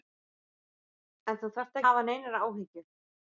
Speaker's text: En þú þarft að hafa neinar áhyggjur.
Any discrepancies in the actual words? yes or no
no